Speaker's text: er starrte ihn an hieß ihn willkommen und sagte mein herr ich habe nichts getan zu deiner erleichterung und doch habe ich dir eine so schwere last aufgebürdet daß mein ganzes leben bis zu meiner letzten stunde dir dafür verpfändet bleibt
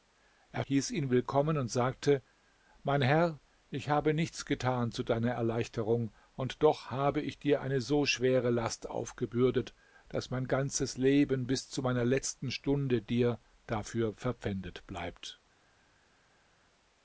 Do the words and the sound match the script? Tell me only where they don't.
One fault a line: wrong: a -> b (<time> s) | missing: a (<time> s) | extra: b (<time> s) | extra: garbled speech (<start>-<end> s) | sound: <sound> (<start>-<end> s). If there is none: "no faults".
missing: starrte ihn an (0.6 s)